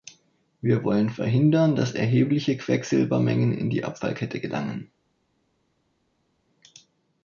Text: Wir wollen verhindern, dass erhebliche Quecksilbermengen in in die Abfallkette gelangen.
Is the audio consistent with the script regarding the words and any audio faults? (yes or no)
no